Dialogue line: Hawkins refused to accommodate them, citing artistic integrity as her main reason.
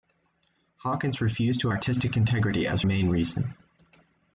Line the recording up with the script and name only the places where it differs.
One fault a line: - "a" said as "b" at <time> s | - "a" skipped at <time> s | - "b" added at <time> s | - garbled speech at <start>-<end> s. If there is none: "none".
- "accommodate them citing" skipped at 1.7 s
- "her" skipped at 2.8 s